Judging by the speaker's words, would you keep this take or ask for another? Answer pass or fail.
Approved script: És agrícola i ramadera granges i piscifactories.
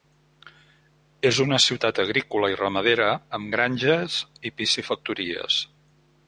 fail